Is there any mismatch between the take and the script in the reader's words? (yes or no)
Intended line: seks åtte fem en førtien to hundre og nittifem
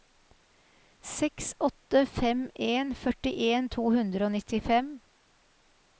no